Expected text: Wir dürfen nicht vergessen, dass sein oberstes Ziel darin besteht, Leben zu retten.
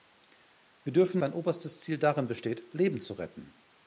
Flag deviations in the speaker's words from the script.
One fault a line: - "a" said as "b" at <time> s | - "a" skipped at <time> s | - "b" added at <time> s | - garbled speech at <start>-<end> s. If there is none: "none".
- "nicht vergessen dass" skipped at 1.2 s